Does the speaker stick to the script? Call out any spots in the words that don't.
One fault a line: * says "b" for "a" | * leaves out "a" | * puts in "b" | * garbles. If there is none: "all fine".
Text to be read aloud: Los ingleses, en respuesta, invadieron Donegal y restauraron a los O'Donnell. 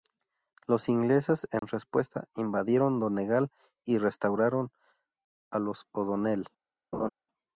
all fine